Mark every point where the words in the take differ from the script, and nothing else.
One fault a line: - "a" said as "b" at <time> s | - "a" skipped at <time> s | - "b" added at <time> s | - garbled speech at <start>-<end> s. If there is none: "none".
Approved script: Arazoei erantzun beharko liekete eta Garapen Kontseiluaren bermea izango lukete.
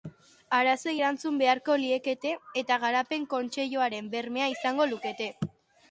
none